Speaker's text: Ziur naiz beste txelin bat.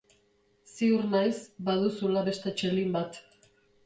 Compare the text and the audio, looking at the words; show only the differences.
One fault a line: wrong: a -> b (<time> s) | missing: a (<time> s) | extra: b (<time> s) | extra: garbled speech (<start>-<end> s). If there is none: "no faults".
extra: baduzula (1.7 s)